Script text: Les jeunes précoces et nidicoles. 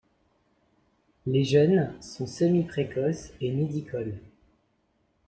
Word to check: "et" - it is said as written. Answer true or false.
true